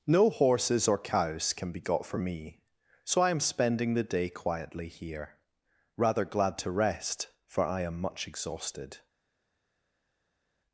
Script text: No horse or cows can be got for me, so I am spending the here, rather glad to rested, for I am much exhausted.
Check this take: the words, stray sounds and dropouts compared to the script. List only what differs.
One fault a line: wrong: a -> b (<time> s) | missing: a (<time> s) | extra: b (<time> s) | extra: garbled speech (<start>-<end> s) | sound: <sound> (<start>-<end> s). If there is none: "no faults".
wrong: horse -> horses (0.3 s)
extra: day quietly (4.0 s)
wrong: rested -> rest (6.7 s)